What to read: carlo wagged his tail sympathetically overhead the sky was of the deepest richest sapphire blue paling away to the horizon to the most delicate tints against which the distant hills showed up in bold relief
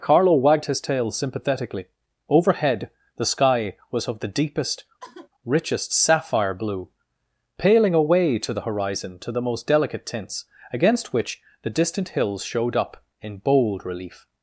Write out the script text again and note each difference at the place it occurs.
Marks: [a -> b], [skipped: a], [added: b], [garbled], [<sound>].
carlo wagged his tail sympathetically overhead the sky was of the deepest [sigh] richest sapphire blue paling away to the horizon to the most delicate tints against which the distant hills showed up in bold relief